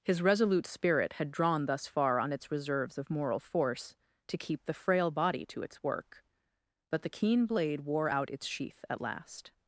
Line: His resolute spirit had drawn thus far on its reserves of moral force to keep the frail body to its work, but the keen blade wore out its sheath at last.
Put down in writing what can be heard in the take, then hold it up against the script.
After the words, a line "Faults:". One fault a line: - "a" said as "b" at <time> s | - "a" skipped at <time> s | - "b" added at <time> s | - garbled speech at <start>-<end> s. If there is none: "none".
His resolute spirit had drawn thus far on its reserves of moral force to keep the frail body to its work, but the keen blade wore out its sheath at last.
Faults:
none